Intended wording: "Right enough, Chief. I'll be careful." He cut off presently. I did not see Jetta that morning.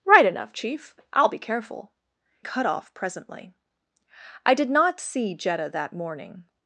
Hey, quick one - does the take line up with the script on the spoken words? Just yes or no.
no